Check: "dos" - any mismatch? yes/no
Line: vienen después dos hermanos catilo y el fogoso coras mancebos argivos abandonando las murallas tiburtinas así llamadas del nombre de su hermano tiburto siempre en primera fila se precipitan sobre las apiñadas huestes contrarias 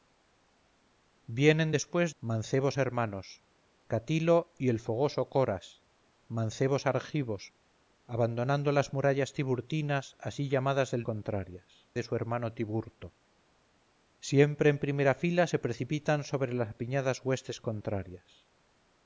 yes